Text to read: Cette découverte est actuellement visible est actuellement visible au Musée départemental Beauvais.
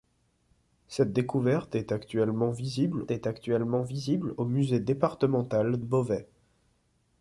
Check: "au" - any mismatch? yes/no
no